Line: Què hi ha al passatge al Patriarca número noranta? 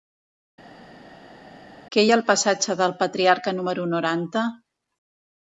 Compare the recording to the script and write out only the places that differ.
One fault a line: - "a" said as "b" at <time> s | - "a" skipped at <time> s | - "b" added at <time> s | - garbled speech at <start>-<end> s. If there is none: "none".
- "al" said as "del" at 2.8 s